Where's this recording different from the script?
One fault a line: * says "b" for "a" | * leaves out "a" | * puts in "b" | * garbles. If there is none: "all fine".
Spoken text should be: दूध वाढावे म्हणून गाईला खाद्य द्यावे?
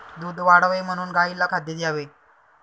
all fine